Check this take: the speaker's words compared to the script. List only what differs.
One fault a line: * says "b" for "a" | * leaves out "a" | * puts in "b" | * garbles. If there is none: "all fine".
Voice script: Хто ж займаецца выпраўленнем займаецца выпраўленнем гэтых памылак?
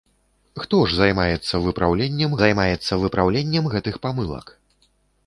all fine